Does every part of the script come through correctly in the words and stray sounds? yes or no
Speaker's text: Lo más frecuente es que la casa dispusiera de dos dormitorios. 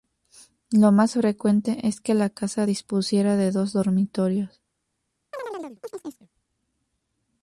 no